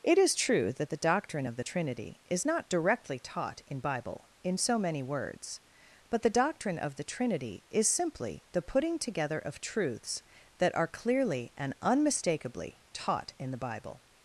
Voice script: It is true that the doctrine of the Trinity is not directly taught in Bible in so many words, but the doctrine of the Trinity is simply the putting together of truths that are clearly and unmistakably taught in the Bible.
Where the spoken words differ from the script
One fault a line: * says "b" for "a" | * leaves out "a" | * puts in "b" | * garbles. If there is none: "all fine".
all fine